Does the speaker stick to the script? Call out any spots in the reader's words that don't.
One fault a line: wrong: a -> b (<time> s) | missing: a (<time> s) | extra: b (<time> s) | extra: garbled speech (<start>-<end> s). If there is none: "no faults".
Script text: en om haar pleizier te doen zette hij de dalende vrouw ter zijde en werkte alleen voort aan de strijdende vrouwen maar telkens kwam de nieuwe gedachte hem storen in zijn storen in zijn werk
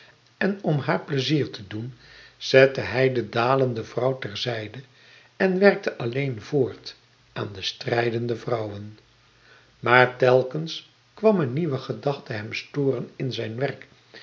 wrong: de -> een (11.4 s)
missing: storen in zijn (13.5 s)